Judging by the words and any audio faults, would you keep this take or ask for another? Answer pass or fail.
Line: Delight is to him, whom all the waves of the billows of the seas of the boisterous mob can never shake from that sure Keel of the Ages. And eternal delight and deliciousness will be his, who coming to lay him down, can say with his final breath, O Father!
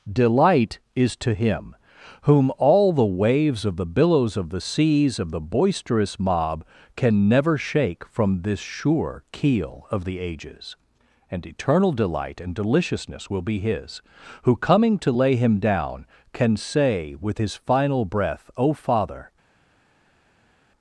fail